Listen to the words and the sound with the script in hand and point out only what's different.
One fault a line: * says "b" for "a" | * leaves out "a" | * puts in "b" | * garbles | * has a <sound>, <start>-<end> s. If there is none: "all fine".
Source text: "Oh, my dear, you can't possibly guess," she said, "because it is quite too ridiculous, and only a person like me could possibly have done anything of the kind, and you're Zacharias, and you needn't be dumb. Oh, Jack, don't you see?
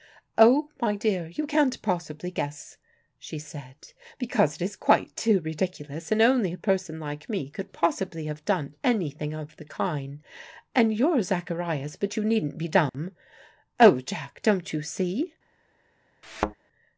* says "but" for "and"
* has a dropout, 12.9-12.9 s
* has a thud, 16.2-16.5 s